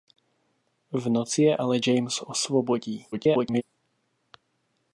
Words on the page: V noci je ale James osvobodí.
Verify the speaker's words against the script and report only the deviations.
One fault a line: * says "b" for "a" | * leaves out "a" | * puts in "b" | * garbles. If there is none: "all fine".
* garbles